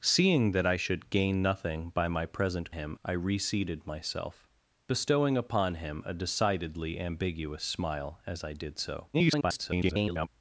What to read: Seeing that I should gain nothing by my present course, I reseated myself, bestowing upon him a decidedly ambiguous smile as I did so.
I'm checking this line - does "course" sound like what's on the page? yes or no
no